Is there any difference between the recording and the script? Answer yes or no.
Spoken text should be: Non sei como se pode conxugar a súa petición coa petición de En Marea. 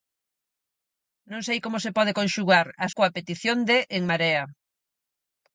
yes